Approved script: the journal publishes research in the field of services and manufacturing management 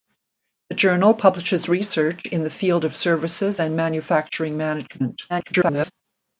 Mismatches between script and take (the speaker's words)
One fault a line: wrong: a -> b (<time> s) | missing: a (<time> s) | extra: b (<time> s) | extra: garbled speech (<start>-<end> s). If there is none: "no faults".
extra: garbled speech (5.3-5.9 s)